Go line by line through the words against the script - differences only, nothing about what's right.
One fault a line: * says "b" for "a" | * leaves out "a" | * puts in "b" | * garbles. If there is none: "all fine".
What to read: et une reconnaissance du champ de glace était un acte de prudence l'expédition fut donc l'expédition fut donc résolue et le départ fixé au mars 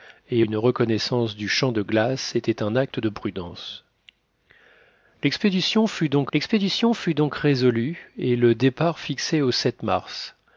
all fine